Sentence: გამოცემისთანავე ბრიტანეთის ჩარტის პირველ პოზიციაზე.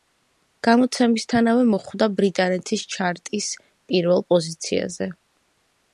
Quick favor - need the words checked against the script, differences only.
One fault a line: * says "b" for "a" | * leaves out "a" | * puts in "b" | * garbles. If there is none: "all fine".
* puts in "მოხვდა"